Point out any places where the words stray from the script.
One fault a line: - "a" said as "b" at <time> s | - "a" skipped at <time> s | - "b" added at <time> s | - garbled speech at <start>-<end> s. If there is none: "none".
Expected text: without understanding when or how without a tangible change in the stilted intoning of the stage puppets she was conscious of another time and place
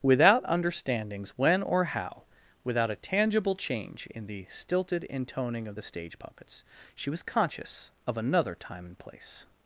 - "understanding" said as "understandings" at 0.5 s